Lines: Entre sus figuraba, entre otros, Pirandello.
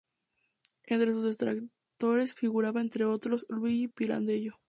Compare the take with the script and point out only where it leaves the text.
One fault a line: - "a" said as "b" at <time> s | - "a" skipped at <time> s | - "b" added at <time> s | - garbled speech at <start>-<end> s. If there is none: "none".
- "detractores" added at 1.2 s
- "Luigi" added at 3.5 s